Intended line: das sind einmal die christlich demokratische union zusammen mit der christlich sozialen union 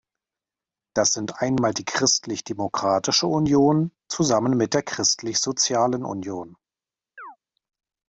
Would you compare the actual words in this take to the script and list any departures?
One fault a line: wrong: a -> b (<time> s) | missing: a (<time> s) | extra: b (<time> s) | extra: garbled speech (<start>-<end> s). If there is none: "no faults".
no faults